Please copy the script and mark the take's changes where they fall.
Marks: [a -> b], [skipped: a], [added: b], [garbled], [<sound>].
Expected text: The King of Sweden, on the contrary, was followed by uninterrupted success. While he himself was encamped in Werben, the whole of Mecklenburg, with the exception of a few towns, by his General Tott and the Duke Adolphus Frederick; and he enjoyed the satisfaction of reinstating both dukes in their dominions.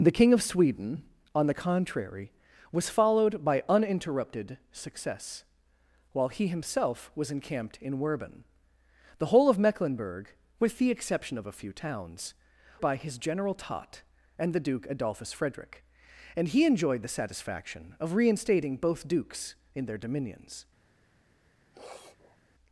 The King of Sweden, on the contrary, was followed by uninterrupted success. While he himself was encamped in Werben, the whole of Mecklenburg, with the exception of a few towns, by his General Tott and the Duke Adolphus Frederick; and he enjoyed the satisfaction of reinstating both dukes in their dominions. [sniff]